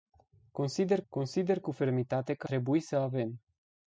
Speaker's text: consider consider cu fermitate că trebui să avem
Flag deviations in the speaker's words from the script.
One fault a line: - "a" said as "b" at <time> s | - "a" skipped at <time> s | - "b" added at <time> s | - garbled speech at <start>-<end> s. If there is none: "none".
none